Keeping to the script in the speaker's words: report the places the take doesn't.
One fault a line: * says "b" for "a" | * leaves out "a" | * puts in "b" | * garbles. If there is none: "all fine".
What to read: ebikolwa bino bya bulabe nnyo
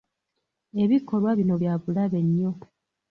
all fine